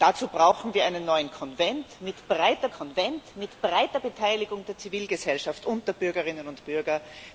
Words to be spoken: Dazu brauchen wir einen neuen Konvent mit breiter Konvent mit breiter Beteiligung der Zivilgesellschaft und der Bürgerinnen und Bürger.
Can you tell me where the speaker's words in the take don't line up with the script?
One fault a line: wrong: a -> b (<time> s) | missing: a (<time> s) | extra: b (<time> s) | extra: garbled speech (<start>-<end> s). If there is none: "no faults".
no faults